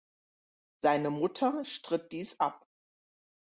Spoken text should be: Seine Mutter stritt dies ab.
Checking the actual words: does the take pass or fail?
pass